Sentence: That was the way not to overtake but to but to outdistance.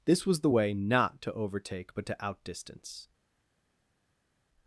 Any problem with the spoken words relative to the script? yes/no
yes